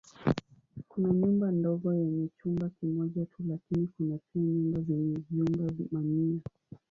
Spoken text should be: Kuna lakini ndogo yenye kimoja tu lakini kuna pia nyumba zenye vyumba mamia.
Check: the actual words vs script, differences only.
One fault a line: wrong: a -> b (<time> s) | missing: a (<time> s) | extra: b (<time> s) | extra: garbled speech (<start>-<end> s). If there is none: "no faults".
wrong: lakini -> nyumba (1.1 s)
extra: chumba (2.4 s)